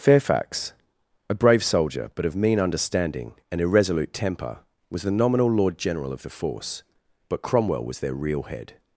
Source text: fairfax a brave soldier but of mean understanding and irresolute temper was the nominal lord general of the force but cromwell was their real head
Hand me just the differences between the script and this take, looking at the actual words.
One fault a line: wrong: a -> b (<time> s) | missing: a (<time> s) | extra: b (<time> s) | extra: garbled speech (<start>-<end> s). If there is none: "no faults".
no faults